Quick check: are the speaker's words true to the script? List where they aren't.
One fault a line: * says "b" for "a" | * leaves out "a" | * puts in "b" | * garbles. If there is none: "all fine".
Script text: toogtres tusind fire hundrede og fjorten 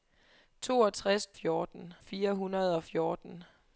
* says "fjorten" for "tusind"